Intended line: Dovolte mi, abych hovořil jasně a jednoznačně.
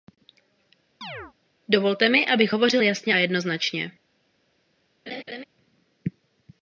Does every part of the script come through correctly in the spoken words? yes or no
yes